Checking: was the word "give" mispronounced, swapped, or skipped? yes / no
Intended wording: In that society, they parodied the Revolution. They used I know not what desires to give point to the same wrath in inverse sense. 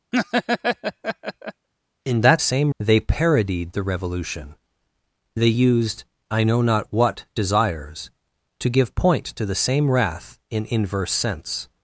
no